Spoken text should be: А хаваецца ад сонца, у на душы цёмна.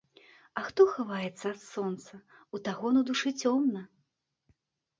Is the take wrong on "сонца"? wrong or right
right